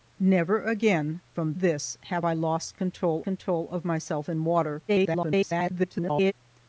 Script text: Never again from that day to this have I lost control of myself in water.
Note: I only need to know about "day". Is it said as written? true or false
false